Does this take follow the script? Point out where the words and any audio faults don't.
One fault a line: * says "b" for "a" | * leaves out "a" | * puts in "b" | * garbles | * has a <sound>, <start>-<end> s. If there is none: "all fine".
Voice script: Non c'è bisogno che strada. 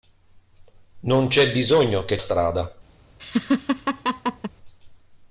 * has a laugh, 3.2-4.5 s